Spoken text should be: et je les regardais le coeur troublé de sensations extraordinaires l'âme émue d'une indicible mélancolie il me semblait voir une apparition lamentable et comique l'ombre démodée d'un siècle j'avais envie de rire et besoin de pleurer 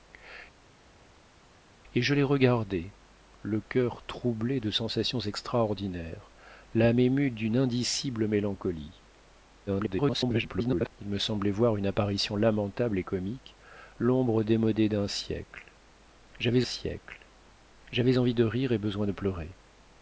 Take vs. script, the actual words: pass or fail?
fail